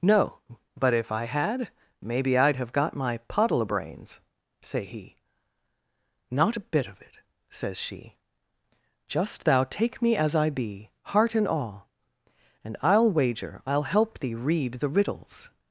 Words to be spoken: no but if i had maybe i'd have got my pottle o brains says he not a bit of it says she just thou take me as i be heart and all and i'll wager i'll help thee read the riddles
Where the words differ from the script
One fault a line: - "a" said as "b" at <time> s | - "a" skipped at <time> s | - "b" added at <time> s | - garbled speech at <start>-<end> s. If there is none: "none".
- "says" said as "say" at 4.6 s